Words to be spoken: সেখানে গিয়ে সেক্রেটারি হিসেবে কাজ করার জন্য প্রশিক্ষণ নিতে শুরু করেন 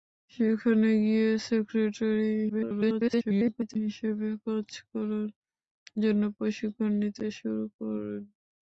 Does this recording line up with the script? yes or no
no